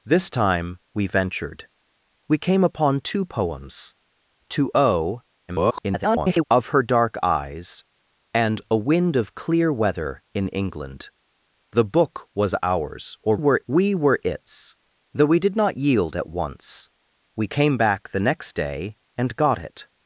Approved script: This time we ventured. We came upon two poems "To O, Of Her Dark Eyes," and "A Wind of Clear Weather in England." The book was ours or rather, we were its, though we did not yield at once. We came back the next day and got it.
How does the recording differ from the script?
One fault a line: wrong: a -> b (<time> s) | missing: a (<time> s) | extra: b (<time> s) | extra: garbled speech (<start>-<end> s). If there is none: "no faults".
extra: garbled speech (5.5-6.4 s)
wrong: rather -> were (13.3 s)